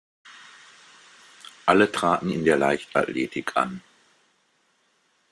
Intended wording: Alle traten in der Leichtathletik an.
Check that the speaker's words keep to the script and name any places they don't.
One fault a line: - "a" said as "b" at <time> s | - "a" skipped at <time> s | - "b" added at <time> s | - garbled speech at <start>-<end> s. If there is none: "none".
none